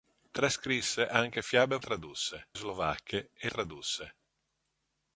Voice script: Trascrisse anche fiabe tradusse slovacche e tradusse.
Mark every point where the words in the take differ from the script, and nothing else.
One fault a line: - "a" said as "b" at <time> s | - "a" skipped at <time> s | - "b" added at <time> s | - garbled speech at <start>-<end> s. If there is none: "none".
none